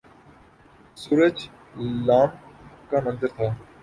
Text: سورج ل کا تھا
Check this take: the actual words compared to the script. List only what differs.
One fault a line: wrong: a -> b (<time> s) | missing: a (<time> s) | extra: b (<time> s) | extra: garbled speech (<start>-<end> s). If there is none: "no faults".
extra: منظر (3.0 s)